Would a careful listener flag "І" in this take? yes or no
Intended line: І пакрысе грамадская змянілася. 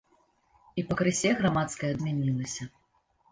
no